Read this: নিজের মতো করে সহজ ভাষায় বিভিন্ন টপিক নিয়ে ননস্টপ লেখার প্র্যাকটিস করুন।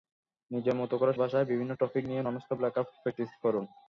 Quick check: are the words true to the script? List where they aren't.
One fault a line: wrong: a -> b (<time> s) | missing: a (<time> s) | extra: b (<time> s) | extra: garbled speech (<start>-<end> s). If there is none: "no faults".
missing: সহজ (1.1 s)